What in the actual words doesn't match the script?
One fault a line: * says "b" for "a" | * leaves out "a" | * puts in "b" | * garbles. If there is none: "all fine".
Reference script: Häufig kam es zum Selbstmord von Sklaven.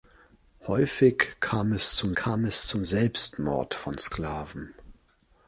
* puts in "kam es zum"